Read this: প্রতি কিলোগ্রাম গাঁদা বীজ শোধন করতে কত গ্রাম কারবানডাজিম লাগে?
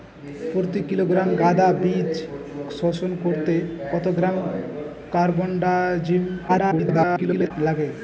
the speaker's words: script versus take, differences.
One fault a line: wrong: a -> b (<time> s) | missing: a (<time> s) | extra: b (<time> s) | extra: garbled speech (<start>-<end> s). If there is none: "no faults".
extra: garbled speech (6.5-7.5 s)